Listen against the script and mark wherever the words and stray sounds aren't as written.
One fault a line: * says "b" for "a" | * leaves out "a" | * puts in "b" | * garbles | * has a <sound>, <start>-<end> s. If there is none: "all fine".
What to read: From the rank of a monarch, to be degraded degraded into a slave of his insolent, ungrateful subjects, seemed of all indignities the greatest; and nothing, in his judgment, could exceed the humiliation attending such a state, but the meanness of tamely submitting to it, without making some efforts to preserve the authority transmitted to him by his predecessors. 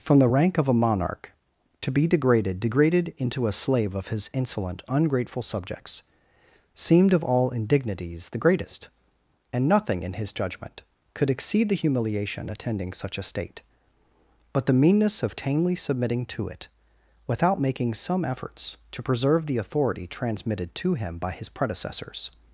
all fine